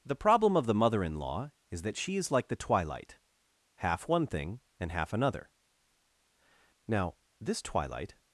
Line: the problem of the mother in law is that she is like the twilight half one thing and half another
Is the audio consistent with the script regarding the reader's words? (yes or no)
no